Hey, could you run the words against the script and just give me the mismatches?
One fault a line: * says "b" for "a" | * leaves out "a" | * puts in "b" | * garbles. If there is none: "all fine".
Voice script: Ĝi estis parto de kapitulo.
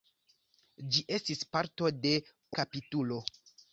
all fine